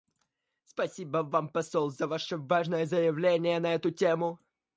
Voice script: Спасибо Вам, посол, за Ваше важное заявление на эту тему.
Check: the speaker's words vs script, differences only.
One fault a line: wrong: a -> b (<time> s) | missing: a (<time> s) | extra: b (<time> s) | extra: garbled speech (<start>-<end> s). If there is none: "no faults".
no faults